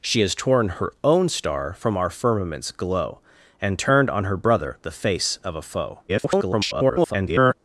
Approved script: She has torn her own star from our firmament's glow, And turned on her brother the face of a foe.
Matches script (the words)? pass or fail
fail